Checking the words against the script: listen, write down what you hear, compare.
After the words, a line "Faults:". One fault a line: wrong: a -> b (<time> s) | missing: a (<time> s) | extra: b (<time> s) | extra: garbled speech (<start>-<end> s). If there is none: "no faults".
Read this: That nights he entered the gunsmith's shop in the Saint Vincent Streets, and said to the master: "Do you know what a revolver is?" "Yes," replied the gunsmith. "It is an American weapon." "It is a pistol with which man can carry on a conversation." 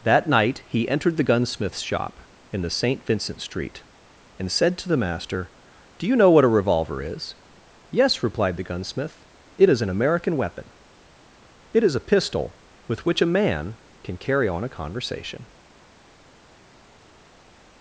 That night he entered the gunsmith's shop in the Saint Vincent Street, and said to the master: "Do you know what a revolver is?" "Yes," replied the gunsmith. "It is an American weapon." "It is a pistol with which a man can carry on a conversation."
Faults:
wrong: nights -> night (0.3 s)
wrong: Streets -> Street (3.4 s)
extra: a (13.2 s)